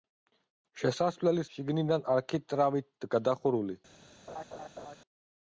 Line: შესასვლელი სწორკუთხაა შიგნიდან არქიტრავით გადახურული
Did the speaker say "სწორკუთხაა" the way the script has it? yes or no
no